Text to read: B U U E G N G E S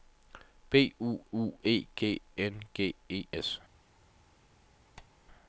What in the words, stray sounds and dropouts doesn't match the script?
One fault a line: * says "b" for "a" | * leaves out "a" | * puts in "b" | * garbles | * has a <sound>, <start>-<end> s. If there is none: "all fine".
* has a squeak, 5.0-5.1 s